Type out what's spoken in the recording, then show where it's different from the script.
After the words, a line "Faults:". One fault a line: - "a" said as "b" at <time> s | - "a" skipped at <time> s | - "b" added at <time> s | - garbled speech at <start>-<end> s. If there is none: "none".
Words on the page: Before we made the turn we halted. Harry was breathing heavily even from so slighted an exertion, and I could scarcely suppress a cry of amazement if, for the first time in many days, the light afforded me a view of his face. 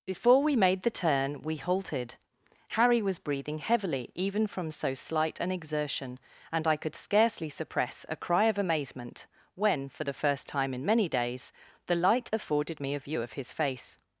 Before we made the turn we halted. Harry was breathing heavily even from so slight an exertion, and I could scarcely suppress a cry of amazement when, for the first time in many days, the light afforded me a view of his face.
Faults:
- "slighted" said as "slight" at 5.0 s
- "if" said as "when" at 9.5 s